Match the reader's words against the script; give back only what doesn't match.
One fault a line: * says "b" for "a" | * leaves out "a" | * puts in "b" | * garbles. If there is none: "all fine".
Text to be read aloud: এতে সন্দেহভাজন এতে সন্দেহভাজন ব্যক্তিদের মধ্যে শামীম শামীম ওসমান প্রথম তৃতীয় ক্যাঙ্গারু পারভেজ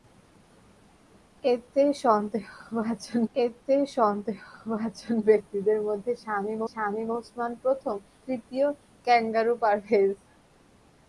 all fine